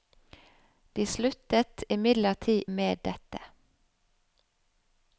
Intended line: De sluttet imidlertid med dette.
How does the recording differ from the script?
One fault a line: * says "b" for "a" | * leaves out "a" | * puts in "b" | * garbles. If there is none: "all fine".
all fine